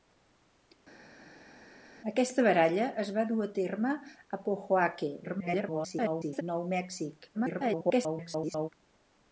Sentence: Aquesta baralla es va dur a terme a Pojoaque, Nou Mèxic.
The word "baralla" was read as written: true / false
true